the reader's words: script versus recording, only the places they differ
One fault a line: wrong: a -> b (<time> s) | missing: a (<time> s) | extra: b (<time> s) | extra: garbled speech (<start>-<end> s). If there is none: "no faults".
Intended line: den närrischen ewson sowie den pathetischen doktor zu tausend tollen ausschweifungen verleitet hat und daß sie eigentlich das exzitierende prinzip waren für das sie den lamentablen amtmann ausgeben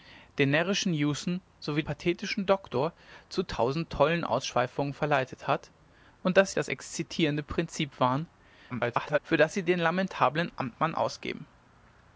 missing: den (1.8 s)
missing: sie eigentlich (6.5 s)
extra: garbled speech (8.7-9.2 s)